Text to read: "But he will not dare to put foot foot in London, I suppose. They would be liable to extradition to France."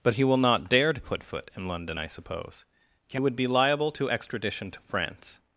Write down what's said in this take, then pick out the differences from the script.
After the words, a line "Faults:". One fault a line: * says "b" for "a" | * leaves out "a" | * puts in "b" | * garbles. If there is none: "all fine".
"But he will not dare to put foot in London, I suppose. He would be liable to extradition to France."
Faults:
* leaves out "foot"
* says "He" for "They"